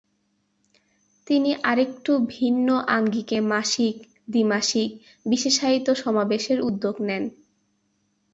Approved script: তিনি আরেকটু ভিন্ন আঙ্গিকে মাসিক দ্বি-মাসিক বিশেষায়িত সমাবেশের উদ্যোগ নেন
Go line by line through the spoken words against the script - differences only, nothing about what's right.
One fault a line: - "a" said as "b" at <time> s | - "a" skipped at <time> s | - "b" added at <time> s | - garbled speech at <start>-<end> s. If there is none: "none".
none